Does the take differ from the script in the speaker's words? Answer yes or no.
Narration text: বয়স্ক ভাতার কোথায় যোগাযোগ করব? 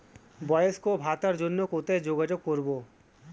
yes